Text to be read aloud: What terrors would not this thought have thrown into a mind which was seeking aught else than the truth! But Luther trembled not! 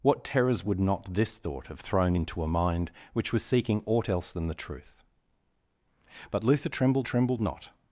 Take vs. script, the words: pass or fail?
fail